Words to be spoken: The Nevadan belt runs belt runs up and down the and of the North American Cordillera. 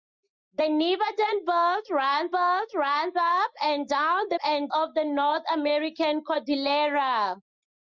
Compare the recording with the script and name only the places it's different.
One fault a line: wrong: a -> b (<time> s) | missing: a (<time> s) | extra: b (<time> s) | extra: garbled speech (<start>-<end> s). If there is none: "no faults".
no faults